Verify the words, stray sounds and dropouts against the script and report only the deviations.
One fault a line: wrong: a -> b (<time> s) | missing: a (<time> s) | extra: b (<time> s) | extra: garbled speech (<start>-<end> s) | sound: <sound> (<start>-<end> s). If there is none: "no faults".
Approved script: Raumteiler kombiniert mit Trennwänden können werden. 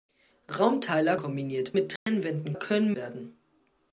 sound: dropout (2.0-2.1 s)